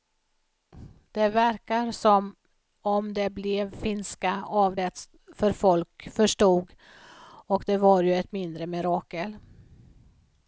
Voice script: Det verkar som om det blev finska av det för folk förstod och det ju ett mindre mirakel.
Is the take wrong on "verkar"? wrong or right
right